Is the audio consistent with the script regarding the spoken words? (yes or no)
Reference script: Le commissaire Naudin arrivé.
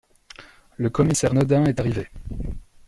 no